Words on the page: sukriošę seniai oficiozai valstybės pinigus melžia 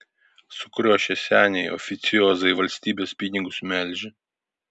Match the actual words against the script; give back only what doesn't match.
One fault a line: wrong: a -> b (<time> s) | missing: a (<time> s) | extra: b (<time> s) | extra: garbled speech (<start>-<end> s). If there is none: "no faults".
no faults